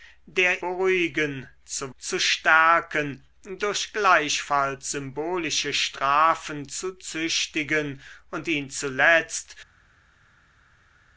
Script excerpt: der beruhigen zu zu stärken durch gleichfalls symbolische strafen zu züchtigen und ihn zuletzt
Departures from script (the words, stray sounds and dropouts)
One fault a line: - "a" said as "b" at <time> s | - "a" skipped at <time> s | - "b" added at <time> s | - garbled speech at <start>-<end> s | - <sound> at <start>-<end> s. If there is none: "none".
none